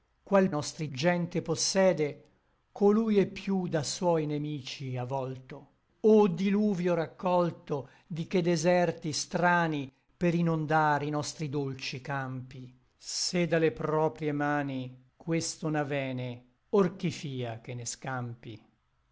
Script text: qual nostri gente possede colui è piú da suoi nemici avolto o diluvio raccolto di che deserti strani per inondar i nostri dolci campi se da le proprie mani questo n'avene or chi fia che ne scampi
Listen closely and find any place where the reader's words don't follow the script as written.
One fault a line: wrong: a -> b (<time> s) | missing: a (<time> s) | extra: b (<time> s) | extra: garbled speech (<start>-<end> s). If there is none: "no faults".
no faults